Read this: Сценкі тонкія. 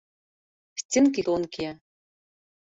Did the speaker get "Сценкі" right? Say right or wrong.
right